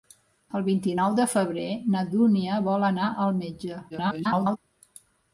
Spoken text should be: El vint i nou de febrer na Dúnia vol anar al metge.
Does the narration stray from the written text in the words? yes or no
yes